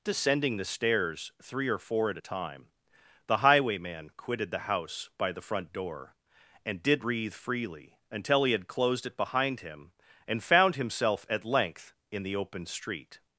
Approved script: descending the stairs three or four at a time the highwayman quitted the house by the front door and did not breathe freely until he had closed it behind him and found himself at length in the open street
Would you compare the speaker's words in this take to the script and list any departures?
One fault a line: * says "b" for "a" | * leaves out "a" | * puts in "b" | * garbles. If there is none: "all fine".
* leaves out "not"